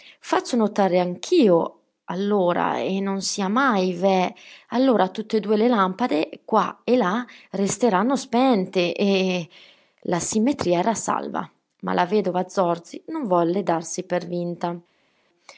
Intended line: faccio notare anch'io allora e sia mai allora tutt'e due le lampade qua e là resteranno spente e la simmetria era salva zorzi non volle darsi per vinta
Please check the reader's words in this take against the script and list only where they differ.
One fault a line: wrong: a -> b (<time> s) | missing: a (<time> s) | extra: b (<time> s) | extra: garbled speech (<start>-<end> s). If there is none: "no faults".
extra: non (3.0 s)
extra: veh (3.9 s)
extra: ma la vedova (11.8 s)